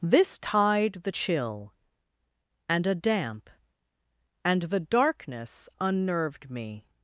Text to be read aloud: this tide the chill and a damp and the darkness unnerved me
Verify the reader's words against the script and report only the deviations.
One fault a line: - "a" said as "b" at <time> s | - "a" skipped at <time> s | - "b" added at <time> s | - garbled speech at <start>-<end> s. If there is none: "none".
none